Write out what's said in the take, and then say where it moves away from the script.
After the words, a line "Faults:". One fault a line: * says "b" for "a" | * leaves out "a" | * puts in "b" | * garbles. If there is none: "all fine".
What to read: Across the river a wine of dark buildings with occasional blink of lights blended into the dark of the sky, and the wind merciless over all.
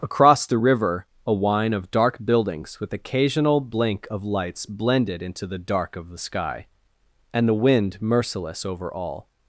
Across the river a wine of dark buildings with occasional blink of lights blended into the dark of the sky, and the wind merciless over all.
Faults:
all fine